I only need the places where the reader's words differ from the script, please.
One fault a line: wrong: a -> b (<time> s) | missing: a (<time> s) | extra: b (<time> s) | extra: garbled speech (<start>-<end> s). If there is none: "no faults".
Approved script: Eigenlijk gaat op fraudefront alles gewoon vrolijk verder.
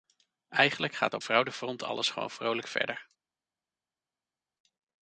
no faults